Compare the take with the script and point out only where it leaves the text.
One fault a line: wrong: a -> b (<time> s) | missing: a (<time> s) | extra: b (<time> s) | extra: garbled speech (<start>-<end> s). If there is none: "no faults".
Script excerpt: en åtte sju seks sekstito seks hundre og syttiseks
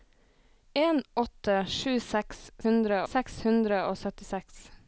wrong: sekstito -> hundre (2.7 s)